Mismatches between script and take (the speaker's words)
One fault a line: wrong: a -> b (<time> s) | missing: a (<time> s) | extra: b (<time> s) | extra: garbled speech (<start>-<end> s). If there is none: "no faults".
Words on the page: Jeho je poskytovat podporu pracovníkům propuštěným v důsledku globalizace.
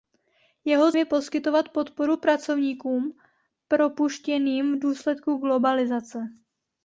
no faults